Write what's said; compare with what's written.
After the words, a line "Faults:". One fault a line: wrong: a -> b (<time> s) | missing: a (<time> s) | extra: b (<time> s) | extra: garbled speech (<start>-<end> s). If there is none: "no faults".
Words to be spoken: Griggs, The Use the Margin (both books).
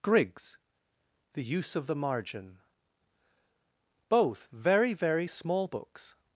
Griggs, The Use of the Margin (both very, very small books).
Faults:
extra: of (1.8 s)
extra: very very small (4.5 s)